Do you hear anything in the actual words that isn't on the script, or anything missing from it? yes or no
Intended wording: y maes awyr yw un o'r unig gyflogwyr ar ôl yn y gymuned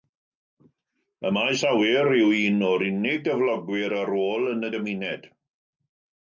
no